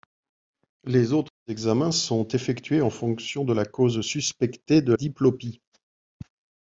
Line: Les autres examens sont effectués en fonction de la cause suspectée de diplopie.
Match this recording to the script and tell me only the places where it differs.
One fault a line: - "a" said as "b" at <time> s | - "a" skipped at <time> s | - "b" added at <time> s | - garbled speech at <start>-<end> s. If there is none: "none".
none